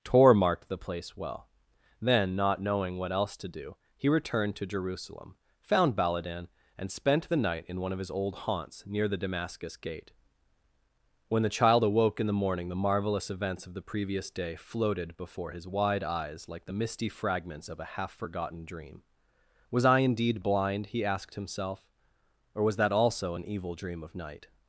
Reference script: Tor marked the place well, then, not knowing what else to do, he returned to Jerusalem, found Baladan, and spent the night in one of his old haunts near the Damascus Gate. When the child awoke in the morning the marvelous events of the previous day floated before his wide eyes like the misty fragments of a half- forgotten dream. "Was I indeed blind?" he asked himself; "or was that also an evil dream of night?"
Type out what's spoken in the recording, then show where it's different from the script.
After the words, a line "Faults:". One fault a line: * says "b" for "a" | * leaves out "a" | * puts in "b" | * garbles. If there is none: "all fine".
Tor marked the place well, then, not knowing what else to do, he returned to Jerusalem, found Baladan, and spent the night in one of his old haunts near the Damascus Gate. When the child awoke in the morning the marvelous events of the previous day floated before his wide eyes like the misty fragments of a half- forgotten dream. "Was I indeed blind?" he asked himself; "or was that also an evil dream of night?"
Faults:
all fine